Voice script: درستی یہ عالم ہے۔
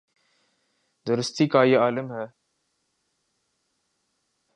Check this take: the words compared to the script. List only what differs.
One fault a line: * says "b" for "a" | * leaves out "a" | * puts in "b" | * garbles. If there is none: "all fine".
* puts in "کا"